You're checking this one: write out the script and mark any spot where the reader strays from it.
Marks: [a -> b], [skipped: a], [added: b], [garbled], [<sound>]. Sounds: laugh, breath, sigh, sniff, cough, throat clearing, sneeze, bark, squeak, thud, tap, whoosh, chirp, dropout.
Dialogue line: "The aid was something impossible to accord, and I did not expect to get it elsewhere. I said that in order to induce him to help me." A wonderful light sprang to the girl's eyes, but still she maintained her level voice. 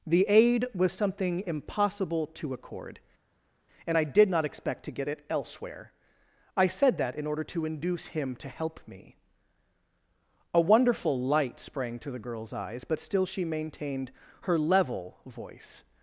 "The aid was something impossible to accord, and I did not expect to get it elsewhere. I said that in order to induce him to help me." A wonderful light sprang to the girl's eyes, but still she maintained her level voice.